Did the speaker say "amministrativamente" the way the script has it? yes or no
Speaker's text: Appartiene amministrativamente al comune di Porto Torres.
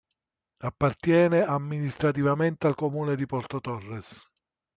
yes